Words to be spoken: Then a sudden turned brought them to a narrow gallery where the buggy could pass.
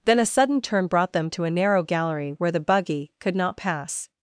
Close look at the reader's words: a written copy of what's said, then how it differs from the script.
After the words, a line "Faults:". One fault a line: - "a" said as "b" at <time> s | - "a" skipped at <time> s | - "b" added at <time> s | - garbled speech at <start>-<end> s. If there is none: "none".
Then a sudden turn brought them to a narrow gallery where the buggy could not pass.
Faults:
- "turned" said as "turn" at 0.6 s
- "not" added at 3.4 s